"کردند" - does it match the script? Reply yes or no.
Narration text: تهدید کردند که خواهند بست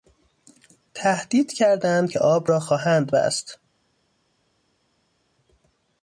yes